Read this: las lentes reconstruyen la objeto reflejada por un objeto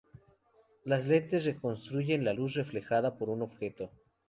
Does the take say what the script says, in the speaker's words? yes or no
no